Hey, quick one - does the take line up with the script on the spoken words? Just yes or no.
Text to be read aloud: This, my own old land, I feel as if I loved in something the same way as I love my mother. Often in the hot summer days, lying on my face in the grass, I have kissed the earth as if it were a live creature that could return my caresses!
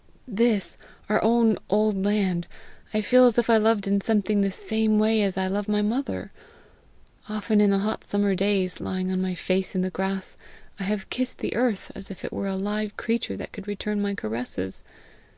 no